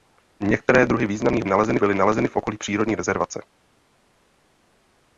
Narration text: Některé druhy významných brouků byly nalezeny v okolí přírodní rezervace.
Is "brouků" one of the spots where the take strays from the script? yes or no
yes